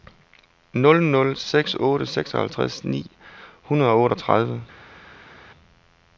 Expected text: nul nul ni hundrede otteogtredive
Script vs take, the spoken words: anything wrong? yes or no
yes